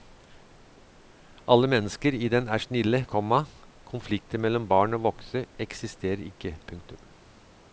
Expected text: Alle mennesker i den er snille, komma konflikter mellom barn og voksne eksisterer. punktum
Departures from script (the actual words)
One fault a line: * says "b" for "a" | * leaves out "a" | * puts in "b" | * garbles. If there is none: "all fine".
* puts in "ikke"